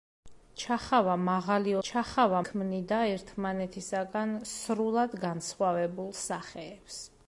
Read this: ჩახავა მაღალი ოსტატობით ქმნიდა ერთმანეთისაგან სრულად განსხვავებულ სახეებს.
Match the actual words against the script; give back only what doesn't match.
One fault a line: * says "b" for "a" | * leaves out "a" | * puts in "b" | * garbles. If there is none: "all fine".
* says "ჩახავა" for "ოსტატობით"